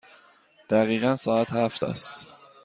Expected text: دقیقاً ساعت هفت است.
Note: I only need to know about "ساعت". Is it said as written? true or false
true